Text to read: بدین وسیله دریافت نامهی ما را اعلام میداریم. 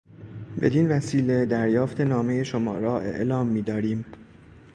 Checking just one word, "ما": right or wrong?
wrong